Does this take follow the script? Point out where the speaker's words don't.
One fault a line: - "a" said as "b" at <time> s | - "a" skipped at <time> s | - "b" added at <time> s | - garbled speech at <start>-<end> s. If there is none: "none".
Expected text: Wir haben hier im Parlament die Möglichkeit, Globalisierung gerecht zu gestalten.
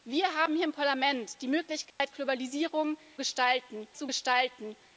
- "gerecht" said as "gestalten" at 3.2 s